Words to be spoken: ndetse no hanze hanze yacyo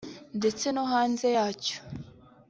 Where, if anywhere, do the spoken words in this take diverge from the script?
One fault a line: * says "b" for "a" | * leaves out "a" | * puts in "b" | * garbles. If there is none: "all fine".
* leaves out "hanze"